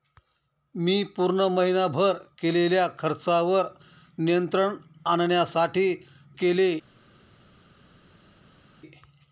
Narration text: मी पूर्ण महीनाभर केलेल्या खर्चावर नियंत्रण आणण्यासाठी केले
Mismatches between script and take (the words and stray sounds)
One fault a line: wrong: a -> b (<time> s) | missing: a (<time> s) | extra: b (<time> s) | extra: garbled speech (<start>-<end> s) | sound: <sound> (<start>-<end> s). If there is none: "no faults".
no faults